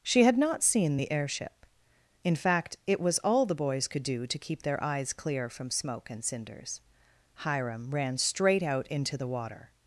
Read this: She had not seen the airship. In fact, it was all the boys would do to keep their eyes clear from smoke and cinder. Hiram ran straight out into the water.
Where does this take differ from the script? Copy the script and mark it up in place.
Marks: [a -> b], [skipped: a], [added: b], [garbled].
She had not seen the airship. In fact, it was all the boys [would -> could] do to keep their eyes clear from smoke and [cinder. -> cinders] Hiram ran straight out into the water.